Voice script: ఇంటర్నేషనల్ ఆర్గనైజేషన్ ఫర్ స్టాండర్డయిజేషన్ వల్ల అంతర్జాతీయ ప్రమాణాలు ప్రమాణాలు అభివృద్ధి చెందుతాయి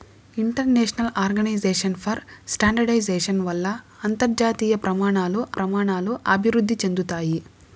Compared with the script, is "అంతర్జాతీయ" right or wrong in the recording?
right